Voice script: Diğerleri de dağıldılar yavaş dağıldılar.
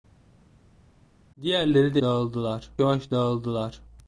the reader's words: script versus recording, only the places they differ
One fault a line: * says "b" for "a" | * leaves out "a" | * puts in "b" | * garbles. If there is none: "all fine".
all fine